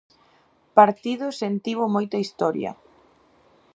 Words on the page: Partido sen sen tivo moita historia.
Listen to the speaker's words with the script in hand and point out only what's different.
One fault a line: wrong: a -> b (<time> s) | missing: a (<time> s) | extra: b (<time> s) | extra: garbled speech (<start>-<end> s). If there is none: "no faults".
missing: sen (1.5 s)